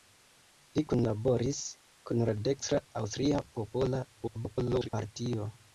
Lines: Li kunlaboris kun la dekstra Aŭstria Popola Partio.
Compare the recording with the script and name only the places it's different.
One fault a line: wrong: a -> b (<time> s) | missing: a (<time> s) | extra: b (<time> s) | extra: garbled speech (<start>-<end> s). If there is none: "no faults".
extra: garbled speech (4.2-4.9 s)